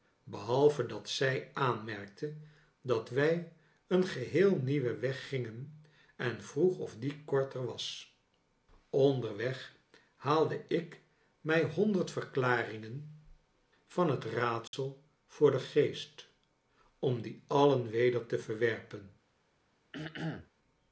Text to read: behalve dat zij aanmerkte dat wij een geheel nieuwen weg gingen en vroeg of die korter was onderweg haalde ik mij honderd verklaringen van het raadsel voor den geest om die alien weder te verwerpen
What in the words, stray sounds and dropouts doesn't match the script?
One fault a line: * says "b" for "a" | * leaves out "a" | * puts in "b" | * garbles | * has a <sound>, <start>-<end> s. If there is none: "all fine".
* has a dropout, 14.7-14.7 s
* has a throat clearing, 19.9-20.5 s